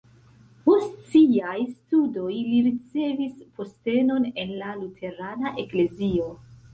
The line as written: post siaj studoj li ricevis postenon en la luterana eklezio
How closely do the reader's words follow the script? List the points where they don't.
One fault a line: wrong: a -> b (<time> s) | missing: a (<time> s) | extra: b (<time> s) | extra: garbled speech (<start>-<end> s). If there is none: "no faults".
no faults